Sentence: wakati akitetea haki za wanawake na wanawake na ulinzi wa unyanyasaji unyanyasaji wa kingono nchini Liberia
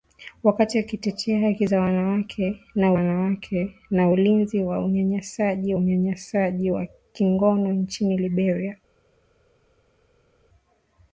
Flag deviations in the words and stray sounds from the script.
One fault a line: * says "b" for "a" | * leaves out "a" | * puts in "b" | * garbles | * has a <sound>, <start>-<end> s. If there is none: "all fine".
all fine